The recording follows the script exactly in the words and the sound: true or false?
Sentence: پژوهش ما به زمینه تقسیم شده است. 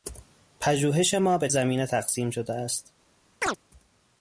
false